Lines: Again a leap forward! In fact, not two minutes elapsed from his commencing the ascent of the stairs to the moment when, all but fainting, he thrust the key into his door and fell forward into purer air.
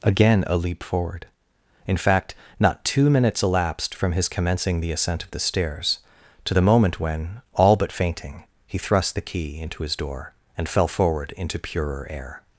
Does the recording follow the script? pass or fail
pass